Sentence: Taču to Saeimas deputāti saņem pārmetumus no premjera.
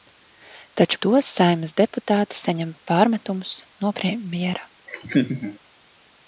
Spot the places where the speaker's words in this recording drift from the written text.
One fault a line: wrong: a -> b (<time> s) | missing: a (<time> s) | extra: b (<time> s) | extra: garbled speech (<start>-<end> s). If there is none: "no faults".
no faults